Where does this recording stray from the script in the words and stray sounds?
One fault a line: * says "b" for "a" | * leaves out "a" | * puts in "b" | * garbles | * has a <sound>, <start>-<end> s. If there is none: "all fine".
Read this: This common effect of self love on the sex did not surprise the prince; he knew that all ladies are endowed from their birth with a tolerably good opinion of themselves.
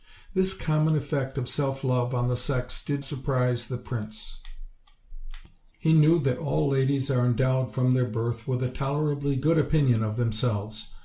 * leaves out "not"